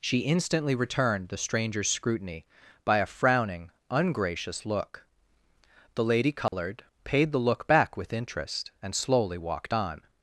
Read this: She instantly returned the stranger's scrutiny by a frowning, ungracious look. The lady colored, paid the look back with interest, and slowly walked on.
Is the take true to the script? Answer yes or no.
yes